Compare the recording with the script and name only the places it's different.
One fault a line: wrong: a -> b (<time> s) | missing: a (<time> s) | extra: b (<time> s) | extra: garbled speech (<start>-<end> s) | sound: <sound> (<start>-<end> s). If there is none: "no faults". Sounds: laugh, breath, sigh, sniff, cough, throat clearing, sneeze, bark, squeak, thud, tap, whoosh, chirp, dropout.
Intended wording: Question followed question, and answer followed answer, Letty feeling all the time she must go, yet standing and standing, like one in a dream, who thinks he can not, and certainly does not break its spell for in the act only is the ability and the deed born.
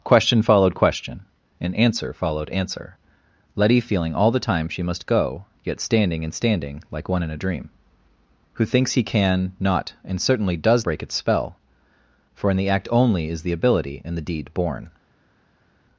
missing: not (10.9 s)